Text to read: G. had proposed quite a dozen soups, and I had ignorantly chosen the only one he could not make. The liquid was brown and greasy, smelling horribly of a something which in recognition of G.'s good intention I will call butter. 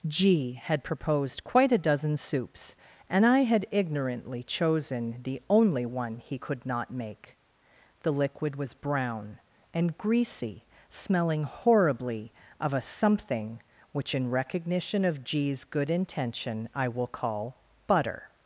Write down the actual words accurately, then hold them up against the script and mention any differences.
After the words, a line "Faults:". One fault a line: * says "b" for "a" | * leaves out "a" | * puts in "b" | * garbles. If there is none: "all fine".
G. had proposed quite a dozen soups, and I had ignorantly chosen the only one he could not make. The liquid was brown and greasy, smelling horribly of a something which in recognition of G.'s good intention I will call butter.
Faults:
all fine